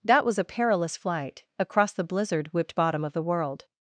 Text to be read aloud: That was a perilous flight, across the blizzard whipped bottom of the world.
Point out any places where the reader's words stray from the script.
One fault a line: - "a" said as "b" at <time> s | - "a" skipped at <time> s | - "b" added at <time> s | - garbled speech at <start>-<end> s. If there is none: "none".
none